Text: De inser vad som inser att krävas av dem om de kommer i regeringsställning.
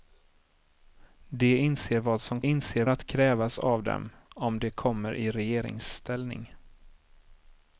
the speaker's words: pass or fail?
pass